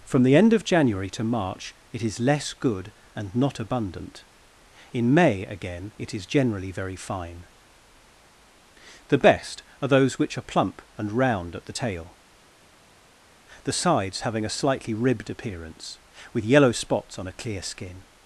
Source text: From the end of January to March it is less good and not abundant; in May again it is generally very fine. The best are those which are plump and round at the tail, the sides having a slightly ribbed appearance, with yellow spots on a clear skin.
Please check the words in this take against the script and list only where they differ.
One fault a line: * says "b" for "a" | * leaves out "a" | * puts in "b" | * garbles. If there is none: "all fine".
all fine